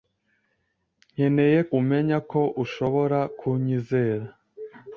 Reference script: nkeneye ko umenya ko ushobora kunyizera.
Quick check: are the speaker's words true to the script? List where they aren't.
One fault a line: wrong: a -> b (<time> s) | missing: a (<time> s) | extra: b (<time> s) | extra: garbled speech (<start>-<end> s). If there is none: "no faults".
missing: ko (1.6 s)